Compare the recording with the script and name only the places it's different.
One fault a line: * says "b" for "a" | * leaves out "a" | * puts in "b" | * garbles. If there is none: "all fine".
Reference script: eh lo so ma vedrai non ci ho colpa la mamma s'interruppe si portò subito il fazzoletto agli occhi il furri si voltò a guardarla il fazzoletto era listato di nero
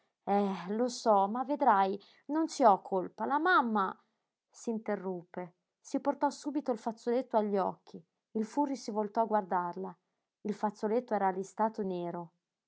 * leaves out "di"